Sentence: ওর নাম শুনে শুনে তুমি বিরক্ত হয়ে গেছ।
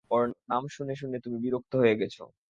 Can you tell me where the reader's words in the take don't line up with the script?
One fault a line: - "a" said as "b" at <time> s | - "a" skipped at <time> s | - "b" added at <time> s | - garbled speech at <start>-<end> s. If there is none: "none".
none